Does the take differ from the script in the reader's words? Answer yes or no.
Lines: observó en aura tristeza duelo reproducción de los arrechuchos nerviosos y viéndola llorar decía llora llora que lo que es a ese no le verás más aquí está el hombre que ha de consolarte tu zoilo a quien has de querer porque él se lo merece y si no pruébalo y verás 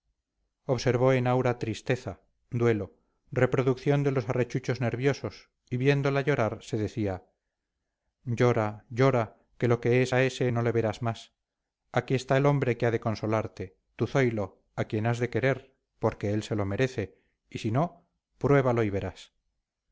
yes